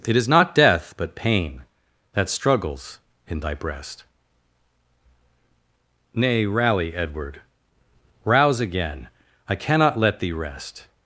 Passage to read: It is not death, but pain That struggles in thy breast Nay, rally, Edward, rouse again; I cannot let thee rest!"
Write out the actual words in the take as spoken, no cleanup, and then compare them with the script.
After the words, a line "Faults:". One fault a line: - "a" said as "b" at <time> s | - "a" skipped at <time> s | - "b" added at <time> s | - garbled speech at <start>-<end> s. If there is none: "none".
It is not death, but pain That struggles in thy breast Nay, rally, Edward, rouse again; I cannot let thee rest!"
Faults:
none